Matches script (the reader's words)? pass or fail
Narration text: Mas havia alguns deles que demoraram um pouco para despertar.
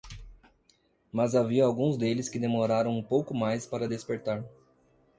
fail